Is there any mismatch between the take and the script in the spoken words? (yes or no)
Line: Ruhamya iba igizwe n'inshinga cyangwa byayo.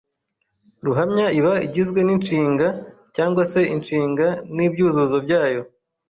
yes